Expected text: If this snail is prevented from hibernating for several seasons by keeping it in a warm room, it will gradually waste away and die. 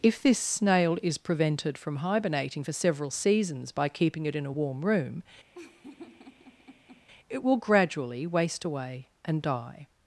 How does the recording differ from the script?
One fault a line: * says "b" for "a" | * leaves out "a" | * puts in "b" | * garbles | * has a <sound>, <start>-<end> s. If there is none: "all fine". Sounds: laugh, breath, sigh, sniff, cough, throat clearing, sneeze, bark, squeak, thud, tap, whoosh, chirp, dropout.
* has a laugh, 5.5-7.1 s